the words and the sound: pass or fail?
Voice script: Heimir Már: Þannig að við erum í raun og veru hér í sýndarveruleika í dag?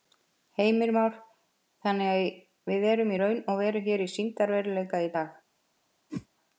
fail